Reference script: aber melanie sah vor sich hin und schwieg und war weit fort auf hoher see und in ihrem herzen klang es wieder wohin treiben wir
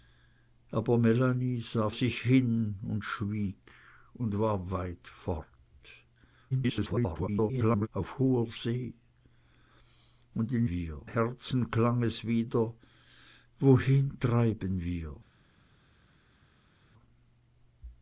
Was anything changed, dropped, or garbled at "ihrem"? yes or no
yes